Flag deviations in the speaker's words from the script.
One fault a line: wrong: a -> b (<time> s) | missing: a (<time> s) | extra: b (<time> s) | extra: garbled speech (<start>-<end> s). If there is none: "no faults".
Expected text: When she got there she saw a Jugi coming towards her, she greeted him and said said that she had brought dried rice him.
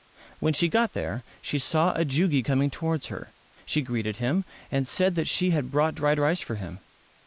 missing: said (5.1 s)
extra: for (6.4 s)